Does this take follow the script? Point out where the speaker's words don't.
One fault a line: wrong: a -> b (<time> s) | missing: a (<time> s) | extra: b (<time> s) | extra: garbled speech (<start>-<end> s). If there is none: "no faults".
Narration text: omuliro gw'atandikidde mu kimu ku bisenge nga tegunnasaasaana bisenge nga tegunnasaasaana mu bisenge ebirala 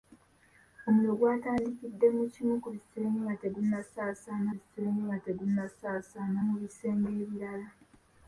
no faults